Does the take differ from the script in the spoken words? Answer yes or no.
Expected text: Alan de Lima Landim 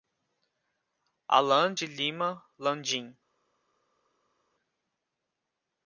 no